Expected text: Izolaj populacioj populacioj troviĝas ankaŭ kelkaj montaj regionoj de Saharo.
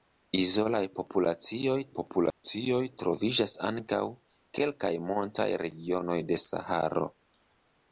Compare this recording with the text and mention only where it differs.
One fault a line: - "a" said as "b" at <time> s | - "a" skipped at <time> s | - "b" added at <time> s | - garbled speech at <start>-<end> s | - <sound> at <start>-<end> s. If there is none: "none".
- dropout at 2.3-2.4 s